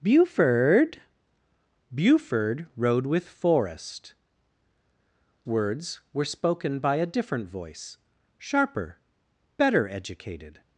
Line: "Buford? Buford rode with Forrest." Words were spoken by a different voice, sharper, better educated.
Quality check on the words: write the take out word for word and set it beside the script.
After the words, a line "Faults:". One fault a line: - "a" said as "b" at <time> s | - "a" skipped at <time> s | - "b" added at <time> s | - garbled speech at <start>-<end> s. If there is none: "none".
"Buford? Buford rode with Forrest." Words were spoken by a different voice, sharper, better educated.
Faults:
none